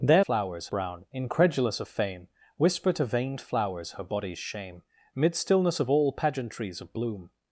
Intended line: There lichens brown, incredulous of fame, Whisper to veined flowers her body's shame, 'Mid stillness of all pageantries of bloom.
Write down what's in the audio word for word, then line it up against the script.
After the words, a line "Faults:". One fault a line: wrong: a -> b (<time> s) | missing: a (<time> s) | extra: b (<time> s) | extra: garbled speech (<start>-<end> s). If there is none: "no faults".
There flowers brown, incredulous of fame, Whisper to veined flowers her body's shame, 'Mid stillness of all pageantries of bloom.
Faults:
wrong: lichens -> flowers (0.2 s)